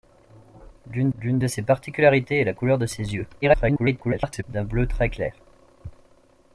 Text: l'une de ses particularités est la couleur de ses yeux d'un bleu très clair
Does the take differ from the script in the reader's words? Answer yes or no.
yes